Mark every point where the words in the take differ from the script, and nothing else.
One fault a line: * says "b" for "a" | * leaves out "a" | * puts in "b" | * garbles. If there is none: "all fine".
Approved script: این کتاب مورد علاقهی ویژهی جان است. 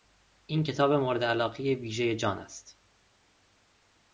all fine